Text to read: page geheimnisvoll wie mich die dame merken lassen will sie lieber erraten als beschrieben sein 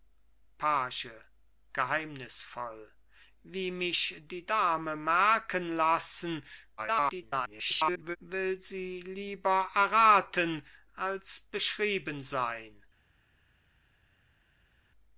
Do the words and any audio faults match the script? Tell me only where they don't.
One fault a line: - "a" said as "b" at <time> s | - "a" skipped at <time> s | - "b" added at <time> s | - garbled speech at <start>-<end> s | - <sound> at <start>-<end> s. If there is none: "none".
- garbled speech at 6.8-8.2 s